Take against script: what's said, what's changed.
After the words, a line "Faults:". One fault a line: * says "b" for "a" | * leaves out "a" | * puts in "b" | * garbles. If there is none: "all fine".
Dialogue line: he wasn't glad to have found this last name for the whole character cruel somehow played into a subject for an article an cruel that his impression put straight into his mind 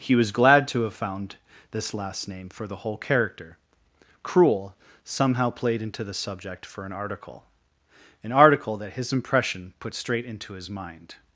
he was glad to have found this last name for the whole character cruel somehow played into the subject for an article an article that his impression put straight into his mind
Faults:
* says "was" for "wasn't"
* says "the" for "a"
* says "article" for "cruel"